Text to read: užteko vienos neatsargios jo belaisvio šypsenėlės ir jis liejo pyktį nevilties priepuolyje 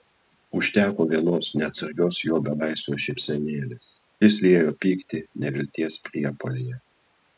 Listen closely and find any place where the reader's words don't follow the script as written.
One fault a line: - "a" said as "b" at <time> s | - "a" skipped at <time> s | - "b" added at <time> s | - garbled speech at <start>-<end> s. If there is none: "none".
- "ir" skipped at 3.9 s